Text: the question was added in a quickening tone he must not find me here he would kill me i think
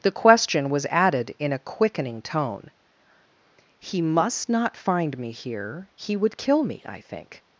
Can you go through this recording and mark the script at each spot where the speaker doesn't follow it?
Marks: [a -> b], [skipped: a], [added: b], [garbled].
the question was added in a quickening tone he must not find me here he would kill me i think